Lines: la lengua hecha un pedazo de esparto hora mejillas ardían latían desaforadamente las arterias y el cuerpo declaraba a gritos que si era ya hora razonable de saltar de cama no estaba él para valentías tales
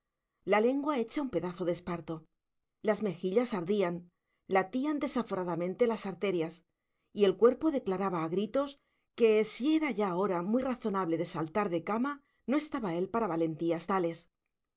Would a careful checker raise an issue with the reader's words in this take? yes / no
yes